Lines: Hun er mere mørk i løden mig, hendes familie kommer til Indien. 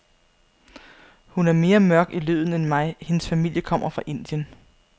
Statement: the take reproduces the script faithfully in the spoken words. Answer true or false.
false